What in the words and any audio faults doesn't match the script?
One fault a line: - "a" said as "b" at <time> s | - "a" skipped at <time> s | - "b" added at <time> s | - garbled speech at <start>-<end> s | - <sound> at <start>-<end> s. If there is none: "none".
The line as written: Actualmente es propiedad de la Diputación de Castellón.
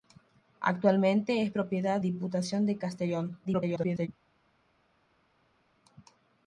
- "de la" skipped at 2.0 s
- garbled speech at 3.4-4.1 s